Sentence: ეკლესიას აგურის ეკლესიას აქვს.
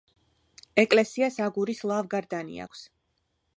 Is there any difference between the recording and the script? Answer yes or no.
yes